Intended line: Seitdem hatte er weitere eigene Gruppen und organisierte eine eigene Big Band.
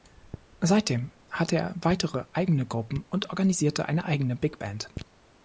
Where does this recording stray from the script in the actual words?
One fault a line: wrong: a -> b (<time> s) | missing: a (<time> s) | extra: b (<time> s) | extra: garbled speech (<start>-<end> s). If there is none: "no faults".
no faults